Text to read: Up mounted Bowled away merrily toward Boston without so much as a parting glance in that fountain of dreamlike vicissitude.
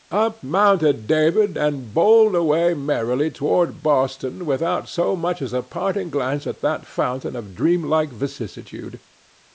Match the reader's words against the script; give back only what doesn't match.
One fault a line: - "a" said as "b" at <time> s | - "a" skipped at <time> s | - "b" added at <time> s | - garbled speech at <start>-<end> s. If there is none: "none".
- "David and" added at 1.1 s
- "in" said as "at" at 6.5 s